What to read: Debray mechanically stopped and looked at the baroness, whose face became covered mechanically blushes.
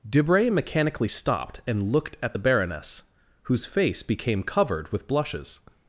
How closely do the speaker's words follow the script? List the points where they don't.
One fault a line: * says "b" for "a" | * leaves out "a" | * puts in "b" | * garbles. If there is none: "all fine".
* says "with" for "mechanically"